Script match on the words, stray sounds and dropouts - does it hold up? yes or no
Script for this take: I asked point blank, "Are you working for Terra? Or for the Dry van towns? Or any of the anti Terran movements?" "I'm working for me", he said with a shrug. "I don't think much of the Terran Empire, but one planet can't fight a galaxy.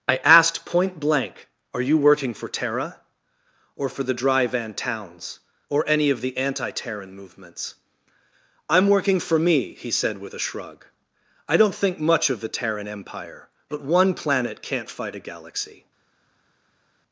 yes